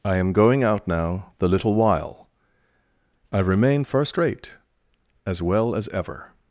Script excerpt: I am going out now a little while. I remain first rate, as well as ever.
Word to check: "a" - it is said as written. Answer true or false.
false